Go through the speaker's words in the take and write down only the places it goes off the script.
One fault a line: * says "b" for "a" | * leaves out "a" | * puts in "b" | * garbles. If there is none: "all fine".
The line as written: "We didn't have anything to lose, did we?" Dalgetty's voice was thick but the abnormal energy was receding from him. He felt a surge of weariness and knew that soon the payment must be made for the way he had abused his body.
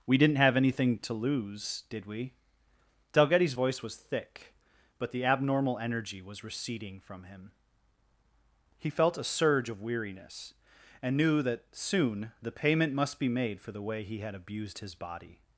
all fine